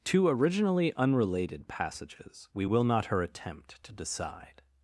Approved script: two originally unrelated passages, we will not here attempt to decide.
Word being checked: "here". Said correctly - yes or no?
no